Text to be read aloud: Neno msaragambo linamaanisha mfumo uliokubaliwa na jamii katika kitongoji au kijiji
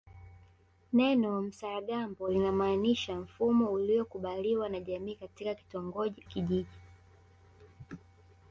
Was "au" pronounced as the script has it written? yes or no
no